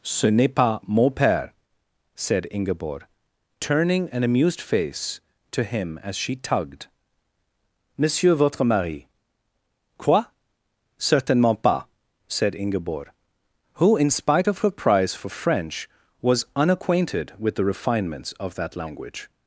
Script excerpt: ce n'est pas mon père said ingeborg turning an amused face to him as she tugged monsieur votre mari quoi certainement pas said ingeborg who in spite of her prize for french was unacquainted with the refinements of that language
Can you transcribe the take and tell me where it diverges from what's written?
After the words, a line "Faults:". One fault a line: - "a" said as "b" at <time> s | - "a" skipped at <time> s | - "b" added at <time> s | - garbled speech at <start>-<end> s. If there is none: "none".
ce n'est pas mon père said ingeborg turning an amused face to him as she tugged monsieur votre mari quoi certainement pas said ingeborg who in spite of her prize for french was unacquainted with the refinements of that language
Faults:
none